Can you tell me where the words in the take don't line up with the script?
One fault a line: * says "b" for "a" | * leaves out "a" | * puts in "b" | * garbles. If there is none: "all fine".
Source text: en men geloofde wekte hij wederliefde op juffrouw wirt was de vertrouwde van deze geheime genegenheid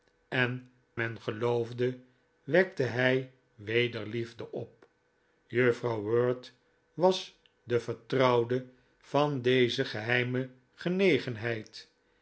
all fine